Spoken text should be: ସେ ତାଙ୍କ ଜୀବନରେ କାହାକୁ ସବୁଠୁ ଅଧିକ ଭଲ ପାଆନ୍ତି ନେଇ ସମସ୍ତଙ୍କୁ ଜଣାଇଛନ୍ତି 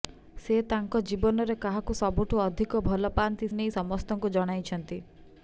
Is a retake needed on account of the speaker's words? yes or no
no